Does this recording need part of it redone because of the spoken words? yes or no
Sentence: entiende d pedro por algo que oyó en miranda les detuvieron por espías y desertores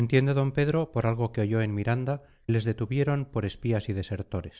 no